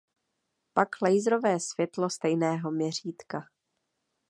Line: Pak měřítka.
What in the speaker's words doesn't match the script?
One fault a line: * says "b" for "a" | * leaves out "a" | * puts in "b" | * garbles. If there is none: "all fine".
* puts in "laserové světlo stejného"